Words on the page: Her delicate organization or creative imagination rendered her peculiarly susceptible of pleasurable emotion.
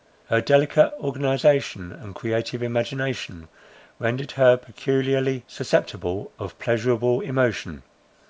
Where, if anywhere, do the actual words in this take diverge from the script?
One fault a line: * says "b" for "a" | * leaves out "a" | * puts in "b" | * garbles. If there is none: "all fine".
* says "and" for "or"